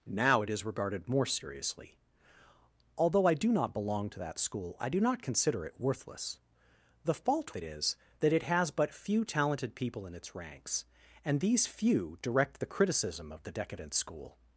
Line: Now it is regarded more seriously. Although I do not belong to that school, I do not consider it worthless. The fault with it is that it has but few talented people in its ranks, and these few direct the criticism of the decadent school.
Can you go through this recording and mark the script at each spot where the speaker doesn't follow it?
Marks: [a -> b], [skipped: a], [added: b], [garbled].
Now it is regarded more seriously. Although I do not belong to that school, I do not consider it worthless. The fault [skipped: with] it is that it has but few talented people in its ranks, and these few direct the criticism of the decadent school.